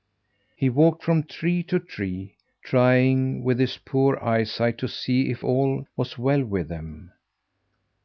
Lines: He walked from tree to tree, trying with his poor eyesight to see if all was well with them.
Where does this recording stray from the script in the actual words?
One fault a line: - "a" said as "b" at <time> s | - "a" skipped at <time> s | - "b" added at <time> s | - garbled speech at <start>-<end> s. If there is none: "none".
none